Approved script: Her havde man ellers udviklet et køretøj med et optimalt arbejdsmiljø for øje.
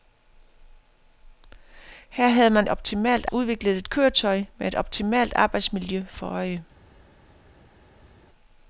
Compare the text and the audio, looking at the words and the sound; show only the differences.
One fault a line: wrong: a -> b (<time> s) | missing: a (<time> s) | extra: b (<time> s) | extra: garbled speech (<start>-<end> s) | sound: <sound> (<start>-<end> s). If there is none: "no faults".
wrong: ellers -> optimalt (2.7 s)